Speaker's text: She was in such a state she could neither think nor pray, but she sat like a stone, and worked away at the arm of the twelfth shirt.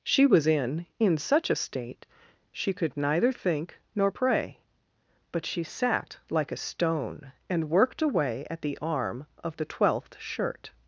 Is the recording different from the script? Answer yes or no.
yes